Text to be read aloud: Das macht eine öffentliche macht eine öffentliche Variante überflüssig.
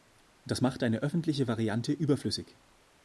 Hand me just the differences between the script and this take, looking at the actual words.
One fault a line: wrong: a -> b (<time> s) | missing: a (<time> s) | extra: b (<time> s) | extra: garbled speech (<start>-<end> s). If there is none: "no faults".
missing: macht eine öffentliche (1.5 s)